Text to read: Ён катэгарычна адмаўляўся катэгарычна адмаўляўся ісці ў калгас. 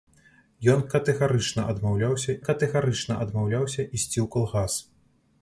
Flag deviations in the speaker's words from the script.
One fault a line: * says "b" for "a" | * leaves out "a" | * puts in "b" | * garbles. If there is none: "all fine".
all fine